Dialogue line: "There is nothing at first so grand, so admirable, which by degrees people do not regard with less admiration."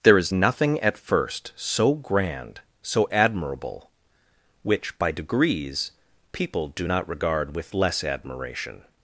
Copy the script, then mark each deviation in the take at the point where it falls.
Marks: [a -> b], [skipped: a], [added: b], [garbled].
"There is nothing at first so grand, so admirable, which by degrees people do not regard with less admiration."